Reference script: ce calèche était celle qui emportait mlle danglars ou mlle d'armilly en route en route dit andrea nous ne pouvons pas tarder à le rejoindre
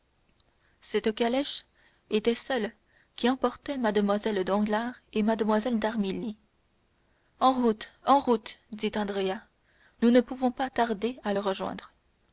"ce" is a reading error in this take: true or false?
true